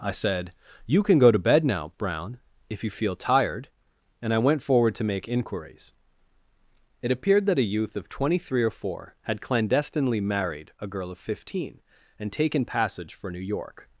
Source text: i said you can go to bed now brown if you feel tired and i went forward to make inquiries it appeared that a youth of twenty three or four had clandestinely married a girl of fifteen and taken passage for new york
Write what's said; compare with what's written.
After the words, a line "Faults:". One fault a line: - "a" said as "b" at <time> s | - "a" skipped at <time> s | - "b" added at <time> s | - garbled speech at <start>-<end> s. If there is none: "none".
i said you can go to bed now brown if you feel tired and i went forward to make inquiries it appeared that a youth of twenty three or four had clandestinely married a girl of fifteen and taken passage for new york
Faults:
none